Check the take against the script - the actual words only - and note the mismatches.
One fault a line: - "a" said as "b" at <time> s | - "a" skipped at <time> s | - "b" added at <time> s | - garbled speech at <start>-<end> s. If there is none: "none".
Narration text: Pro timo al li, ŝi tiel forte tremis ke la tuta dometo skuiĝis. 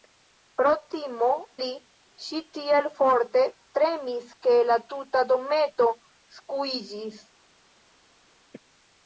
- "al" skipped at 1.3 s